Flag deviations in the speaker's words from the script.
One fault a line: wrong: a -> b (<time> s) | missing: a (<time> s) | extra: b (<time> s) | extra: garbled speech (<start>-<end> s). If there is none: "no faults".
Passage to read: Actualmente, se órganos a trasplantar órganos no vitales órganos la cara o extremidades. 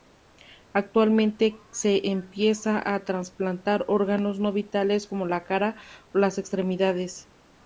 wrong: órganos -> empieza (2.1 s)
wrong: órganos -> como (5.0 s)
extra: las (6.2 s)